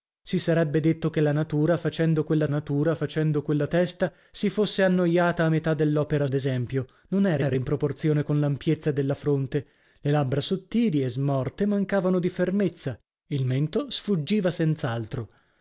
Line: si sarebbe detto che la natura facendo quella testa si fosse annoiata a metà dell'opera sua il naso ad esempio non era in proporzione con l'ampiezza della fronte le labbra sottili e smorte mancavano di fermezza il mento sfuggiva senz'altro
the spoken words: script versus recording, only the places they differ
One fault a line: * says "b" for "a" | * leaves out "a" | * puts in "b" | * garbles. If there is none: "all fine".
* puts in "natura facendo quella"
* leaves out "sua il naso"
* puts in "era"